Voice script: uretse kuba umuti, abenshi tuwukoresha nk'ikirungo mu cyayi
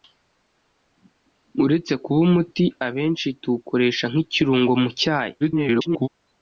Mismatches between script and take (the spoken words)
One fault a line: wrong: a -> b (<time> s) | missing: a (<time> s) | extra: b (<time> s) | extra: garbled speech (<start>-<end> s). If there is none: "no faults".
extra: garbled speech (5.4-6.1 s)